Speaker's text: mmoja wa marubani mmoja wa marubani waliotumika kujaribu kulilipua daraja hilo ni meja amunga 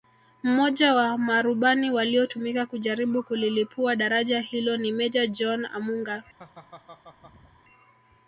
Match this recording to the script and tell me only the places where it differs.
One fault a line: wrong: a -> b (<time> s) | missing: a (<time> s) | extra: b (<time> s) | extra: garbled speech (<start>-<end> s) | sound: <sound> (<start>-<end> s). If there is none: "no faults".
missing: mmoja wa marubani (1.9 s)
extra: john (5.3 s)
sound: laugh (6.4-7.6 s)